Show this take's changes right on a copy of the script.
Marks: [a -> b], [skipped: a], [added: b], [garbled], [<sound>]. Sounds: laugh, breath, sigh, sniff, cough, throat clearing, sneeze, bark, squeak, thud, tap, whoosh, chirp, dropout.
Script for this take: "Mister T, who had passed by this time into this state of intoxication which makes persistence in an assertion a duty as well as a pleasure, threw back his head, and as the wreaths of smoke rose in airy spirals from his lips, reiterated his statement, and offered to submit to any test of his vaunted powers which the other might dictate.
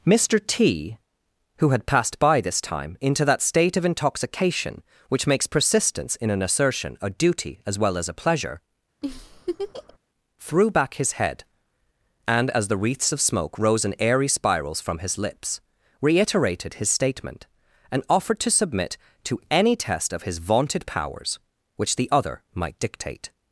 "Mister T, who had passed by this time into [this -> that] state of intoxication which makes persistence in an assertion a duty as well as a pleasure, [laugh] threw back his head, and as the wreaths of smoke rose in airy spirals from his lips, reiterated his statement, and offered to submit to any test of his vaunted powers which the other might dictate.